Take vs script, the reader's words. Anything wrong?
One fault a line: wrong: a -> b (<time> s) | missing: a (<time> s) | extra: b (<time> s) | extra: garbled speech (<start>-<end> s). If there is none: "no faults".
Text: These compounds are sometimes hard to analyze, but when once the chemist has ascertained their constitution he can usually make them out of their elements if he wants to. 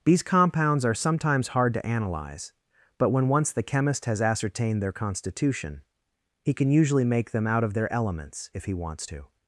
no faults